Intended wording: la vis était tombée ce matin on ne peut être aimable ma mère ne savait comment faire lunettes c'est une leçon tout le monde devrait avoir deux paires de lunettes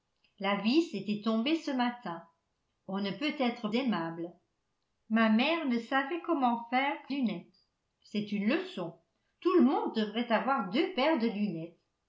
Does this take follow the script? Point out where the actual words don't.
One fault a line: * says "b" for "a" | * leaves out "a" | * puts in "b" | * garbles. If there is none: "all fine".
all fine